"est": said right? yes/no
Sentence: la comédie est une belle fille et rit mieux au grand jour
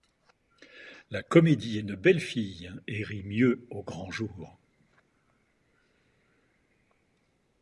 no